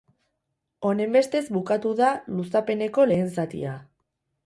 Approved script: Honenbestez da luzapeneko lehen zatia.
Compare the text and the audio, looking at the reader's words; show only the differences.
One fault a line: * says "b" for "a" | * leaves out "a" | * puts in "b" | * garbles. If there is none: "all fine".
* puts in "bukatu"